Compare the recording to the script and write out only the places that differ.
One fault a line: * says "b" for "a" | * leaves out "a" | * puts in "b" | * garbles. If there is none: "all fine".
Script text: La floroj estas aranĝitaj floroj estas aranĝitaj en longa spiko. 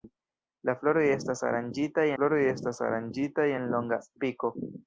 all fine